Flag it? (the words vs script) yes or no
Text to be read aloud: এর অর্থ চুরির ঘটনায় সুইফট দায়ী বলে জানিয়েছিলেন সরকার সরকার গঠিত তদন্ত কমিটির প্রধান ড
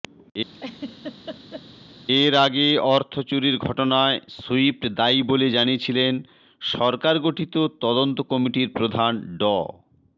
yes